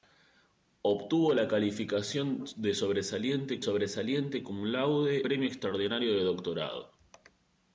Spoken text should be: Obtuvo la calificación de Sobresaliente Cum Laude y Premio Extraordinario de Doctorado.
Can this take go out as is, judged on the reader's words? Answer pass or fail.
fail